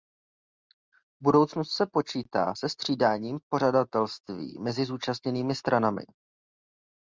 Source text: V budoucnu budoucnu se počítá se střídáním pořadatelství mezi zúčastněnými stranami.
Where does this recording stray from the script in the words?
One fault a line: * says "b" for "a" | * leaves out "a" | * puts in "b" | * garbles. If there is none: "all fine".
* leaves out "budoucnu"